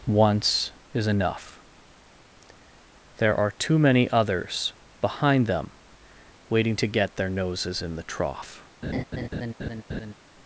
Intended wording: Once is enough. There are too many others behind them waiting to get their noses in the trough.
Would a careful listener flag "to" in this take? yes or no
no